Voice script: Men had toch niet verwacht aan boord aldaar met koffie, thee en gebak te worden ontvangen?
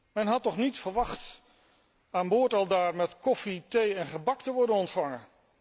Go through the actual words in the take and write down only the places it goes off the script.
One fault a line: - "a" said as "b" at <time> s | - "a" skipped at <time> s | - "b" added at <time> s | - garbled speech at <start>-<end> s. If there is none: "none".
none